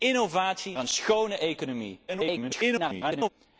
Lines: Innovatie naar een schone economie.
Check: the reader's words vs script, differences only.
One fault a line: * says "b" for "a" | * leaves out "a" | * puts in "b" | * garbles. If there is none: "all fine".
* leaves out "naar"
* garbles